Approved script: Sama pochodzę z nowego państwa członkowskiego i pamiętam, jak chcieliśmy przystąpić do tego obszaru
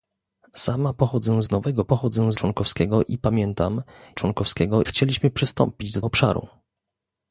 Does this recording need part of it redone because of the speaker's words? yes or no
yes